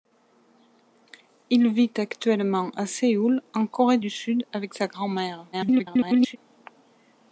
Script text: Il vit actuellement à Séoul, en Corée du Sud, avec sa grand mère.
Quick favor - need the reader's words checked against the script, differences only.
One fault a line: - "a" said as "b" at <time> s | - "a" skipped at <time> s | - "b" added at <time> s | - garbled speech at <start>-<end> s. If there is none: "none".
- garbled speech at 5.5-6.4 s